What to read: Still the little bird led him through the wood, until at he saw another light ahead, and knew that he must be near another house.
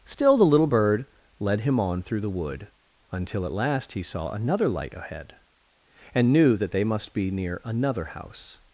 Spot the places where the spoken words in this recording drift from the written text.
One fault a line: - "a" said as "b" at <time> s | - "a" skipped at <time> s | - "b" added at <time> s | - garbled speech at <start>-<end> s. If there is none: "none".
- "on" added at 1.8 s
- "last" added at 3.5 s
- "he" said as "they" at 6.7 s